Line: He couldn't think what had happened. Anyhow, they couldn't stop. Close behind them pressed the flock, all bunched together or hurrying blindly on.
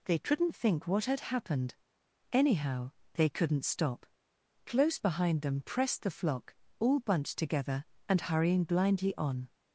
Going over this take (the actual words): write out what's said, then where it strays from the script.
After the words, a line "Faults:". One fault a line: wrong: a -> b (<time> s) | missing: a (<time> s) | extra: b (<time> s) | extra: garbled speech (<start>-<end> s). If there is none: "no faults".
They couldn't think what had happened. Anyhow, they couldn't stop. Close behind them pressed the flock, all bunched together and hurrying blindly on.
Faults:
wrong: He -> They (0.1 s)
wrong: or -> and (8.1 s)